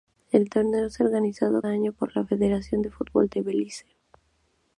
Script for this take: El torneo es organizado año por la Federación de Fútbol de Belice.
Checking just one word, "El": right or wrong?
right